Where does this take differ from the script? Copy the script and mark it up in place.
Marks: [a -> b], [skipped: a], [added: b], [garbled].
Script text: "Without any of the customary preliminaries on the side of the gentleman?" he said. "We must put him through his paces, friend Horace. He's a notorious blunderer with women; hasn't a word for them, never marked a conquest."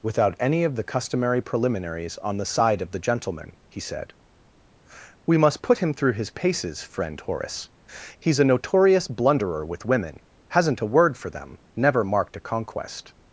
"Without any of the customary preliminaries on the side of the gentleman?" he said. "We must put him through his paces, friend Horace. He's a notorious blunderer with women; hasn't a word for them, never marked a conquest."